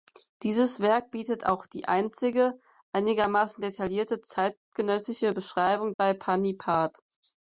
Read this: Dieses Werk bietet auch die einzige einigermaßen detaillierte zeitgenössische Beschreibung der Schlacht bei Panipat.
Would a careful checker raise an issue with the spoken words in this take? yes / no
yes